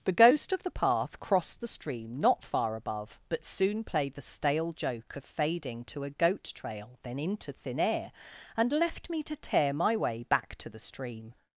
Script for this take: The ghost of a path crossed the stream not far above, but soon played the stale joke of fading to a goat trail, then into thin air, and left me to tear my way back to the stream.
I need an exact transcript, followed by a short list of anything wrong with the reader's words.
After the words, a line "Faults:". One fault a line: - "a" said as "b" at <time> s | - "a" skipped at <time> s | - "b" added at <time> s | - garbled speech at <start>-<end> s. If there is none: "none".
The ghost of the path crossed the stream not far above, but soon played the stale joke of fading to a goat trail, then into thin air, and left me to tear my way back to the stream.
Faults:
- "a" said as "the" at 0.6 s